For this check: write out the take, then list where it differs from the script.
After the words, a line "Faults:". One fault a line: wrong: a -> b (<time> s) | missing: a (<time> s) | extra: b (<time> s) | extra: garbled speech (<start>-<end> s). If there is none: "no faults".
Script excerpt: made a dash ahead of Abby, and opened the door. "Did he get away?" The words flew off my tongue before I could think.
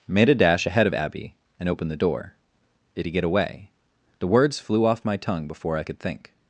made a dash ahead of Abby, and opened the door. "Did he get away?" The words flew off my tongue before I could think.
Faults:
no faults